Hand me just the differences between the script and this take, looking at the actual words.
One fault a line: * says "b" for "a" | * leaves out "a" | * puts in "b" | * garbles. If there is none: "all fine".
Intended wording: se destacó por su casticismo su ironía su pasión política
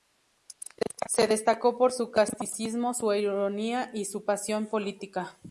* puts in "y"